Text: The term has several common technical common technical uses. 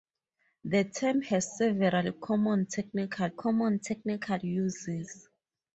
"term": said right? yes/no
yes